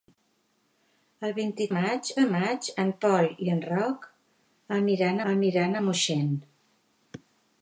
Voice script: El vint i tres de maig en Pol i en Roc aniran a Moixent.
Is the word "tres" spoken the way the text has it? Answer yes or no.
no